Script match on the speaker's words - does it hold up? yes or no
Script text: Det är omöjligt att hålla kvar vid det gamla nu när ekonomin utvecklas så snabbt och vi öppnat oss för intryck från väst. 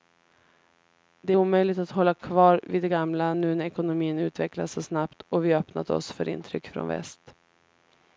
yes